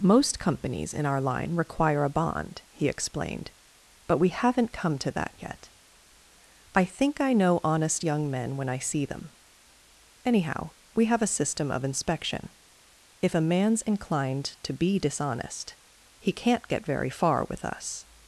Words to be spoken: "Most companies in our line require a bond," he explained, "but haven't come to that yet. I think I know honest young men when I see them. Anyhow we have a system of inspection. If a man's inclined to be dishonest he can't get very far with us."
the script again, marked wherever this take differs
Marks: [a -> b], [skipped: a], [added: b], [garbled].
"Most companies in our line require a bond," he explained, "but [added: we] haven't come to that yet. I think I know honest young men when I see them. Anyhow we have a system of inspection. If a man's inclined to be dishonest he can't get very far with us."